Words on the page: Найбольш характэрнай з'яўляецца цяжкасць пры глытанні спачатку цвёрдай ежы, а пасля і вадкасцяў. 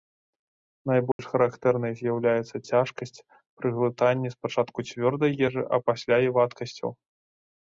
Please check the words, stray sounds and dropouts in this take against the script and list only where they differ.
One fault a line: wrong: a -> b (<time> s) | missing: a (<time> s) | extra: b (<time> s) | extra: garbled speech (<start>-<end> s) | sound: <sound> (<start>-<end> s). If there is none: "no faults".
sound: dropout (1.1-1.2 s)